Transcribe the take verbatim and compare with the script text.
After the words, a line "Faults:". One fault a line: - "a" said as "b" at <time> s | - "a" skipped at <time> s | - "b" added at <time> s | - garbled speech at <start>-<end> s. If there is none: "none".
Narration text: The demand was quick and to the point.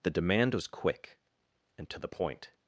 The demand was quick and to the point.
Faults:
none